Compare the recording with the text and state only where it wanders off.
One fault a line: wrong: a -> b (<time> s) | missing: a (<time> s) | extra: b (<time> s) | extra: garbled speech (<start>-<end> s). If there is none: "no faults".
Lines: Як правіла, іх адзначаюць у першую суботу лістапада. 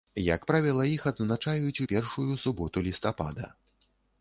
no faults